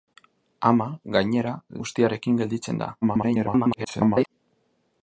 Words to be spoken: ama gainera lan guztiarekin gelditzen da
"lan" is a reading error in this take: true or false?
true